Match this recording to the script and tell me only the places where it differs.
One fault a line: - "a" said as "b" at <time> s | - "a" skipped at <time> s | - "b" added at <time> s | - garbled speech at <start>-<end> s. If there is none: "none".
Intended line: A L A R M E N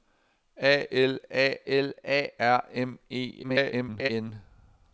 - "L A" added at 1.7 s
- garbled speech at 3.4-4.1 s